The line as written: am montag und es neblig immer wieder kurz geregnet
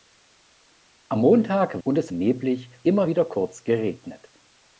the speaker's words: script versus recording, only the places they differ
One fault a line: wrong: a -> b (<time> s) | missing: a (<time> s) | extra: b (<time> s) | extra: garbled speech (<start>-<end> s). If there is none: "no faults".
no faults